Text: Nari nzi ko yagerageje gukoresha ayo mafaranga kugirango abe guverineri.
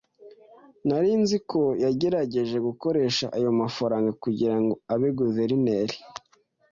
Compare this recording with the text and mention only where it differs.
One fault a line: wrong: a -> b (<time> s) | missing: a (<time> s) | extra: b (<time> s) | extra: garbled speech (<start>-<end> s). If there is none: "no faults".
no faults